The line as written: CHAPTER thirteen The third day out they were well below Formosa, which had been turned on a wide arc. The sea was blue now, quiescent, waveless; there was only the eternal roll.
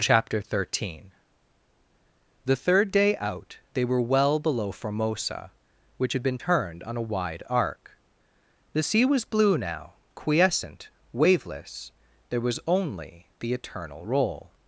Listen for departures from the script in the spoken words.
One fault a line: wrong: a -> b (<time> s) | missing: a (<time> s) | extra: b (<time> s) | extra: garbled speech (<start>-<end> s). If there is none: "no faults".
no faults